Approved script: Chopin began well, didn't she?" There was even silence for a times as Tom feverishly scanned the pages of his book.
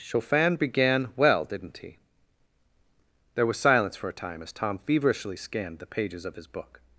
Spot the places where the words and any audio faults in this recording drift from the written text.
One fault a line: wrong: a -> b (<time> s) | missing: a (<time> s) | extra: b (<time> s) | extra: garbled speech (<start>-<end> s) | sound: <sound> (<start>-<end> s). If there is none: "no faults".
wrong: she -> he (1.8 s)
missing: even (3.6 s)
wrong: times -> time (4.1 s)